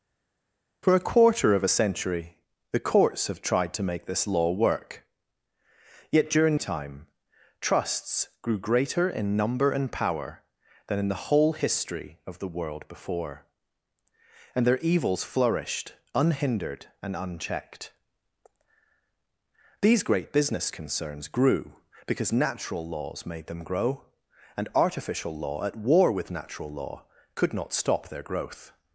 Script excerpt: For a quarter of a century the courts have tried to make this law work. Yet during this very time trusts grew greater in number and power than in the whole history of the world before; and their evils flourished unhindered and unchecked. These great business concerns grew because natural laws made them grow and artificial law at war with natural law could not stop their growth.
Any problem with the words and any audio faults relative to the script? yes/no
yes